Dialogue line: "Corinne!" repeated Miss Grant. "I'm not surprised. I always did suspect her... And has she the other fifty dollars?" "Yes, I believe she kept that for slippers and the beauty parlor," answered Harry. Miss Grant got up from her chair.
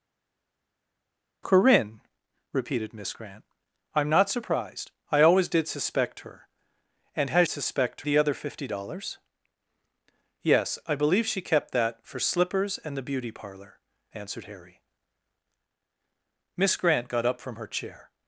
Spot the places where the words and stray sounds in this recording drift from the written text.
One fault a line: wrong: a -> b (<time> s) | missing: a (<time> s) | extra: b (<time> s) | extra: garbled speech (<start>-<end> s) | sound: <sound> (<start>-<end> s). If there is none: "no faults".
wrong: she -> suspect (7.5 s)